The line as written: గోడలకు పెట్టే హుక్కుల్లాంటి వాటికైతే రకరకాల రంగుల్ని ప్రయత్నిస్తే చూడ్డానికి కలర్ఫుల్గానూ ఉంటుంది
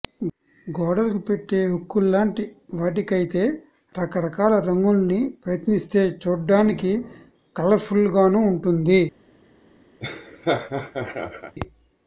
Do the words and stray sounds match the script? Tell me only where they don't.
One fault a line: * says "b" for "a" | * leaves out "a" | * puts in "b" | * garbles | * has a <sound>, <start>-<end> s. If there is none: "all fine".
* has a laugh, 10.0-11.5 s